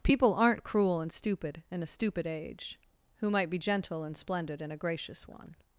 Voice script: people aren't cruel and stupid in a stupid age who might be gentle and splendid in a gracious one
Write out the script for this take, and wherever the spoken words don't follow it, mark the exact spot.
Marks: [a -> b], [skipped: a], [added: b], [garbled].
people aren't cruel and stupid in a stupid age who might be gentle and splendid in a gracious one